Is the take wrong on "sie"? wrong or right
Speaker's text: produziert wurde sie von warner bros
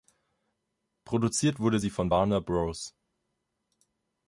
right